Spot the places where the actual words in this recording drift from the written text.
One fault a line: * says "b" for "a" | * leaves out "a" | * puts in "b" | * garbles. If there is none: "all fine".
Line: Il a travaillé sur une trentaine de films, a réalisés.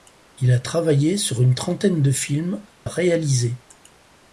all fine